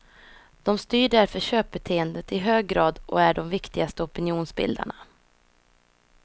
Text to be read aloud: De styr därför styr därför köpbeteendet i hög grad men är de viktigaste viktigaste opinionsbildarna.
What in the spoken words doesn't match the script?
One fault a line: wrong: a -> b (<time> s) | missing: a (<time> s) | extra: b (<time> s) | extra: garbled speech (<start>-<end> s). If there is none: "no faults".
missing: styr därför (1.4 s)
wrong: men -> och (3.0 s)
missing: viktigaste (4.0 s)